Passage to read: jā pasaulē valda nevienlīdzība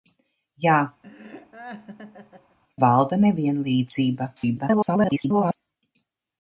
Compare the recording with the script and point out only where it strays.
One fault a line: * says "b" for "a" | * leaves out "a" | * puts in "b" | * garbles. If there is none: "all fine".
* leaves out "pasaulē"
* garbles